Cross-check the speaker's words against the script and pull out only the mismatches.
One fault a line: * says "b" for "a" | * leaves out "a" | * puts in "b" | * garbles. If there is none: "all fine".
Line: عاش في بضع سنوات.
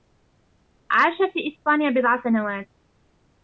* puts in "إسبانيا"